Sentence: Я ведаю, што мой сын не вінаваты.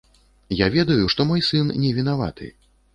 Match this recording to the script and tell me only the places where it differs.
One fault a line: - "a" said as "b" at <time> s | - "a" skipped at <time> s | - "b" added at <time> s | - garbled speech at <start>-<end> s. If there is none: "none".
none